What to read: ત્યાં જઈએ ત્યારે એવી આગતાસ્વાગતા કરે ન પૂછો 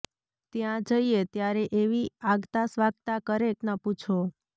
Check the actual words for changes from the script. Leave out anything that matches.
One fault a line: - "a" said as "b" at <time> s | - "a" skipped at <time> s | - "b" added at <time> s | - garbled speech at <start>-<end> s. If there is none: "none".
none